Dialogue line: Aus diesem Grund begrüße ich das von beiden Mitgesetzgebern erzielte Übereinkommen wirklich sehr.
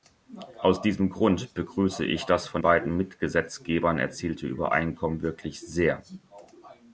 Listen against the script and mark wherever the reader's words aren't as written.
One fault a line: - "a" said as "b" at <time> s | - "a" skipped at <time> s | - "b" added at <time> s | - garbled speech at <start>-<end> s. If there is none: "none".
none